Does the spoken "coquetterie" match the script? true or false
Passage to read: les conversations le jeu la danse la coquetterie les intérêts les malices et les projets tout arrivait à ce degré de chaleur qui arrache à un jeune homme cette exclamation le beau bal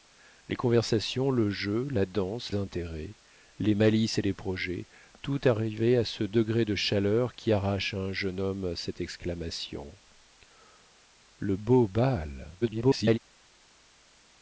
false